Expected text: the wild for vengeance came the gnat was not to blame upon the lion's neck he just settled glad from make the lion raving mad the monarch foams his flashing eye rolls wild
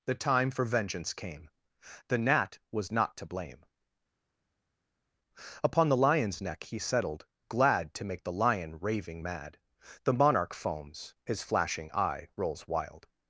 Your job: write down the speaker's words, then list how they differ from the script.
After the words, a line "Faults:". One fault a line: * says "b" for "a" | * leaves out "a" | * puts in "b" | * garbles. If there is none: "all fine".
the time for vengeance came the gnat was not to blame upon the lion's neck he settled glad to make the lion raving mad the monarch foams his flashing eye rolls wild
Faults:
* says "time" for "wild"
* leaves out "just"
* says "to" for "from"